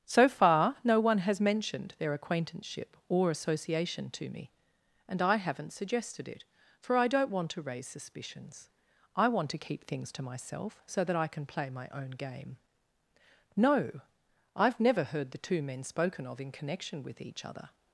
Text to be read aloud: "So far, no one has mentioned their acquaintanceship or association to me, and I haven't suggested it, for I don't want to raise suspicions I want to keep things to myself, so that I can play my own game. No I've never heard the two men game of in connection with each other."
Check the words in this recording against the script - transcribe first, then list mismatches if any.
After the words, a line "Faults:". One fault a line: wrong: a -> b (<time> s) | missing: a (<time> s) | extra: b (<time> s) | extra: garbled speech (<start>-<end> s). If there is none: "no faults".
"So far, no one has mentioned their acquaintanceship or association to me, and I haven't suggested it, for I don't want to raise suspicions I want to keep things to myself, so that I can play my own game. No I've never heard the two men spoken of in connection with each other."
Faults:
wrong: game -> spoken (15.8 s)